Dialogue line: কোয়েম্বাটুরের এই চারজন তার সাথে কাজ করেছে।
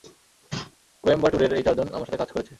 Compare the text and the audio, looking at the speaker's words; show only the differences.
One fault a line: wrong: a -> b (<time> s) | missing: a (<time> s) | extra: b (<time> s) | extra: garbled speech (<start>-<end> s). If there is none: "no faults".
wrong: তার -> আমার (1.9 s)